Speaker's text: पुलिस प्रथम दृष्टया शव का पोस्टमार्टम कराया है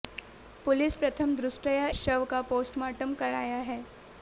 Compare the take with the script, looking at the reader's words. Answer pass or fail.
pass